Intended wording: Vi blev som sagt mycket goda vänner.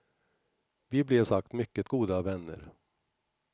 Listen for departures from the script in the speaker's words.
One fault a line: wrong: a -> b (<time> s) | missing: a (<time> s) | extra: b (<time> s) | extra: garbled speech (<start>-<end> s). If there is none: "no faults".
missing: som (1.2 s)